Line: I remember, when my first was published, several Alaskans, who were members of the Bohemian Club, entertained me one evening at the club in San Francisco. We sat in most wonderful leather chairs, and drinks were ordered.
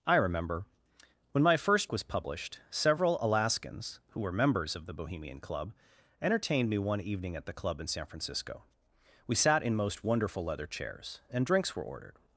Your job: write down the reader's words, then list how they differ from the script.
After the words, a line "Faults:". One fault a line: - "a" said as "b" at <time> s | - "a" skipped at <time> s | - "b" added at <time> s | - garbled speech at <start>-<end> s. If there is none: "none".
I remember, when my first was published, several Alaskans, who were members of the Bohemian Club, entertained me one evening at the club in San Francisco. We sat in most wonderful leather chairs, and drinks were ordered.
Faults:
none